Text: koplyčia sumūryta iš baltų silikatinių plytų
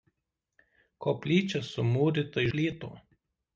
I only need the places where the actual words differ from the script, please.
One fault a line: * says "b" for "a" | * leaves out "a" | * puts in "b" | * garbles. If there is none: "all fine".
* leaves out "iš baltų silikatinių"